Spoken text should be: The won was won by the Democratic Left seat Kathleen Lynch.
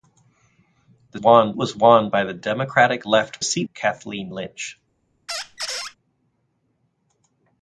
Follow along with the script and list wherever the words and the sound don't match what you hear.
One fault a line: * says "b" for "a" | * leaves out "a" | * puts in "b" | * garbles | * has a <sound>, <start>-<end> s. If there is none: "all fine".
* has a squeak, 5.3-6.0 s